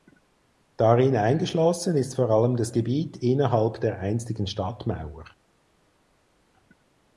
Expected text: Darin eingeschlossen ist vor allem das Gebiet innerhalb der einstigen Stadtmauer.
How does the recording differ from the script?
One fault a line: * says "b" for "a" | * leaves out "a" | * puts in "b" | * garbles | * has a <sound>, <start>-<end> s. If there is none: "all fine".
all fine